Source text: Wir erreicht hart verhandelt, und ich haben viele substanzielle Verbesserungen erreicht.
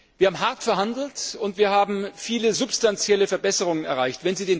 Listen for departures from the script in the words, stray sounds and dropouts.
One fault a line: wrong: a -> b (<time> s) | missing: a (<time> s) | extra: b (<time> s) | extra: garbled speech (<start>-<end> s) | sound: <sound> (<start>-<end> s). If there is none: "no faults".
wrong: erreicht -> haben (0.3 s)
wrong: ich -> wir (1.6 s)